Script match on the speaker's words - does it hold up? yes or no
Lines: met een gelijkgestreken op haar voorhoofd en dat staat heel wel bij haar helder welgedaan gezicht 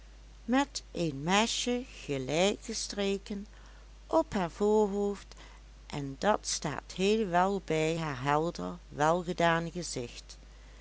no